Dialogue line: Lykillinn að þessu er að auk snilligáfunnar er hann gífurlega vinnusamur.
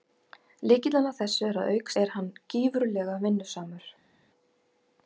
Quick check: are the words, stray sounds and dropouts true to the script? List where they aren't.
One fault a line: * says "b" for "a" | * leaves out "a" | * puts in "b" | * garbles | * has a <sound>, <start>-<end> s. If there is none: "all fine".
* leaves out "snilligáfunnar"